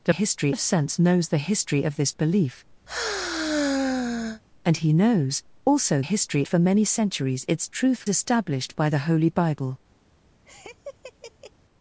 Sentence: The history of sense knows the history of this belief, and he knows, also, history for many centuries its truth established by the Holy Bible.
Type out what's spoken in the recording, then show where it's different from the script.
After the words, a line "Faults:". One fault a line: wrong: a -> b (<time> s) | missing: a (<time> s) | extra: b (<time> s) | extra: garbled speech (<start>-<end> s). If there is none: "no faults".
The history of sense knows the history of this belief, and he knows, also, history for many centuries its truth established by the Holy Bible.
Faults:
no faults